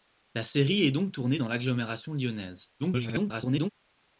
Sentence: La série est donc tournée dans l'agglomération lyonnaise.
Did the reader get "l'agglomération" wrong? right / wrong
right